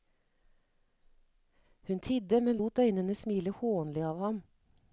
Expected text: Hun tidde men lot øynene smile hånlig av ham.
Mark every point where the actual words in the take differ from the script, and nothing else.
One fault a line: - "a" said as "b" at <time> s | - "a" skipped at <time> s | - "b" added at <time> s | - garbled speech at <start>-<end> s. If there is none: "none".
none